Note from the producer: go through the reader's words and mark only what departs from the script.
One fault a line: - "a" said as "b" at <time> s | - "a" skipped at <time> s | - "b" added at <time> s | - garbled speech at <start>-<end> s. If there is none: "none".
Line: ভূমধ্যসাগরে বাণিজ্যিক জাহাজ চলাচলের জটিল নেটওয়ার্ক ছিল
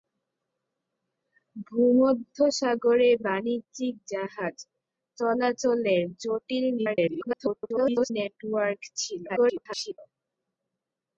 - garbled speech at 6.8-8.1 s
- garbled speech at 9.3-10.0 s